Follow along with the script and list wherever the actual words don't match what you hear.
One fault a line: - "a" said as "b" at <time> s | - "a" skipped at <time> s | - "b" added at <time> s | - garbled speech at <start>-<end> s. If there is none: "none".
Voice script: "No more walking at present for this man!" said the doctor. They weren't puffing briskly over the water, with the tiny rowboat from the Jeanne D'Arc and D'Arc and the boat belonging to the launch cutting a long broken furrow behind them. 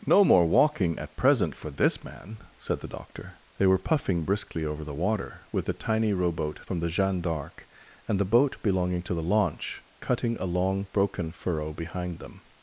- "weren't" said as "were" at 3.7 s
- "D'Arc and" skipped at 8.2 s